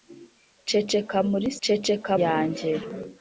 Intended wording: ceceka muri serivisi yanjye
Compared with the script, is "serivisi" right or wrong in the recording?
wrong